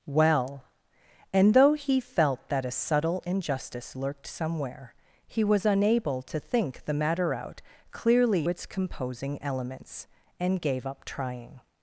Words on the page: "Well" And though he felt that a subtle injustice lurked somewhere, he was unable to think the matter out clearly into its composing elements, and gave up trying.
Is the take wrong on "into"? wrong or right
wrong